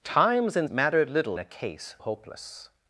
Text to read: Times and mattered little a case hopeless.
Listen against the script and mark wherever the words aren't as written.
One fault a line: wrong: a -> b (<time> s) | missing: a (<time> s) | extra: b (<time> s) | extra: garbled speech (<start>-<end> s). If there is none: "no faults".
no faults